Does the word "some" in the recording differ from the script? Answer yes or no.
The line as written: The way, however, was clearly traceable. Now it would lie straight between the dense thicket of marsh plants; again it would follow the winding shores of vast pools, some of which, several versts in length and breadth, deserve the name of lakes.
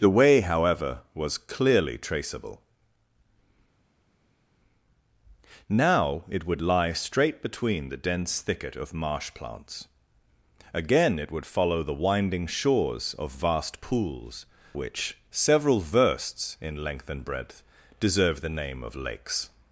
yes